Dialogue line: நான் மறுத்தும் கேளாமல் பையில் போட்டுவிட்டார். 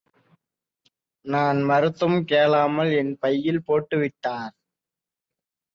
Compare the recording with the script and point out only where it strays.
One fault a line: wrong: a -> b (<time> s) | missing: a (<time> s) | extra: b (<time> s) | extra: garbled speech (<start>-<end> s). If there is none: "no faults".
extra: என் (2.9 s)